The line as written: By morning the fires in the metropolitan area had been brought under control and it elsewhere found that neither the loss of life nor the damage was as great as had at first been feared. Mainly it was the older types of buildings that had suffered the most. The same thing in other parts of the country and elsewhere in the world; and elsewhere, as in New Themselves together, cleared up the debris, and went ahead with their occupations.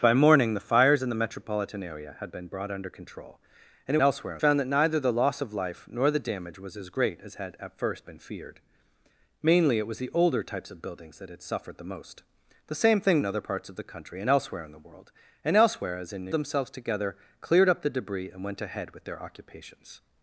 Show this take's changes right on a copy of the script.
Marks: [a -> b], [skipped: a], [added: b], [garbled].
By morning the fires in the metropolitan area had been brought under control and it elsewhere found that neither the loss of life nor the damage was as great as had at first been feared. Mainly it was the older types of buildings that had suffered the most. The same thing in other parts of the country and elsewhere in the world; and elsewhere, as in New Themselves together, cleared up the debris, and went ahead with their occupations.